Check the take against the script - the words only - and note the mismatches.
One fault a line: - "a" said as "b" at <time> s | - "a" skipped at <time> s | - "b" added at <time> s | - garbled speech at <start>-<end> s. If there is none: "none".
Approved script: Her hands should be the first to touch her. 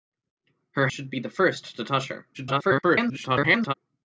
- "hands" skipped at 0.9 s
- garbled speech at 2.3-3.7 s